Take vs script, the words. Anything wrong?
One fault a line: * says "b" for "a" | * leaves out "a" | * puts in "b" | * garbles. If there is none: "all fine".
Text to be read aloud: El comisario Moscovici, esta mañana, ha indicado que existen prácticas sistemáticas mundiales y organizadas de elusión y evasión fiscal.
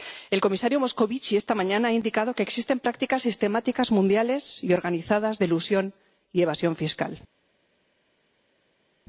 all fine